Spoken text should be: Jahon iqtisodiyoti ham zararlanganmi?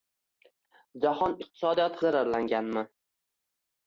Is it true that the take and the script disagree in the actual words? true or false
true